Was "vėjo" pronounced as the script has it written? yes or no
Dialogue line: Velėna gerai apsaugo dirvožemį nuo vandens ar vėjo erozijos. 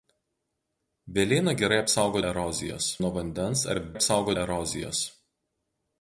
no